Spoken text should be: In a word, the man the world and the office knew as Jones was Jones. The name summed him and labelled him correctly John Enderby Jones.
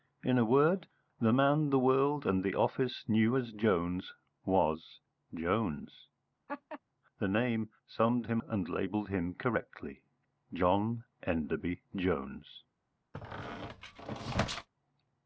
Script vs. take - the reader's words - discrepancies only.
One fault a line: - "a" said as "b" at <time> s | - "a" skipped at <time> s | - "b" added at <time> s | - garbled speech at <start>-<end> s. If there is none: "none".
none